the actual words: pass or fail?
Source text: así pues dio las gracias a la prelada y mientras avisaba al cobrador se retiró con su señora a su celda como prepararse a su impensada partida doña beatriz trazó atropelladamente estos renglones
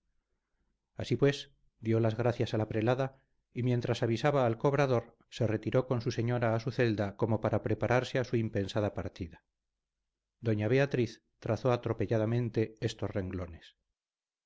fail